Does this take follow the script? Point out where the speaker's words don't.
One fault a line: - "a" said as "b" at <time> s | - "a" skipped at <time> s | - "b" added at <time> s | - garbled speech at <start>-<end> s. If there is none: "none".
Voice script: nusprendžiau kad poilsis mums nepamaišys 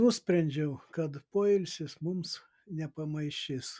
none